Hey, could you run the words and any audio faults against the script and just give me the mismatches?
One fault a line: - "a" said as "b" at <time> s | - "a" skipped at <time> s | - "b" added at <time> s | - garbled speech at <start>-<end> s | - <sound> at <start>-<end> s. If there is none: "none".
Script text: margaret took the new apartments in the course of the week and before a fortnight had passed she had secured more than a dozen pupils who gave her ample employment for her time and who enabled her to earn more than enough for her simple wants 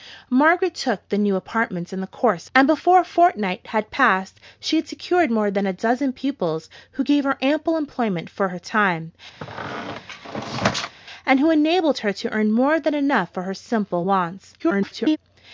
- "of the week" skipped at 2.5 s
- squeak at 9.4-11.0 s
- garbled speech at 14.6-15.2 s